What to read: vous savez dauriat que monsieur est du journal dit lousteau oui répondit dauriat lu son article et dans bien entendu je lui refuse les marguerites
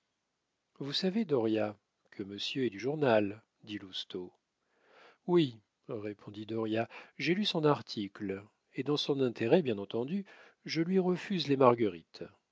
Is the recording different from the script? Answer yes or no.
yes